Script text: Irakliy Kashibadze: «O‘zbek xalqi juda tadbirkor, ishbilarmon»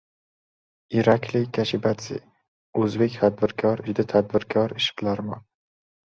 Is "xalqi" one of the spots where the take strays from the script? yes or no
yes